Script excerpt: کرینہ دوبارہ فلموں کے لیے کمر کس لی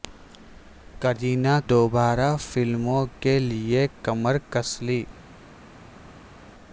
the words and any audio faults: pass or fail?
pass